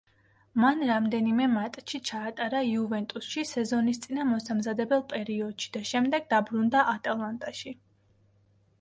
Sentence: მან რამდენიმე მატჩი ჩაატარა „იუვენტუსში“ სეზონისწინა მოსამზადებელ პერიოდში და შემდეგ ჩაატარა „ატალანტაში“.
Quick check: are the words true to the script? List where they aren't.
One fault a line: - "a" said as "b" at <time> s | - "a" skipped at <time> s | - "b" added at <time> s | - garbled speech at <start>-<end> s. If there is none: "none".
- "ჩაატარა" said as "დაბრუნდა" at 6.4 s